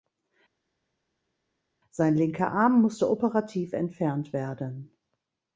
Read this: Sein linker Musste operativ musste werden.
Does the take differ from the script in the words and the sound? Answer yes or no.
yes